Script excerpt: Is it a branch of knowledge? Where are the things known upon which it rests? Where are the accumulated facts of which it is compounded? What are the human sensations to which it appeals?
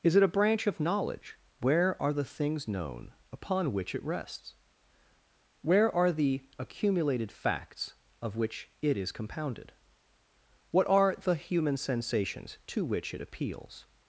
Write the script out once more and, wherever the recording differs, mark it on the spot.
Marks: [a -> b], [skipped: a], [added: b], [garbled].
Is it a branch of knowledge? Where are the things known upon which it rests? Where are the accumulated facts of which it is compounded? What are the human sensations to which it appeals?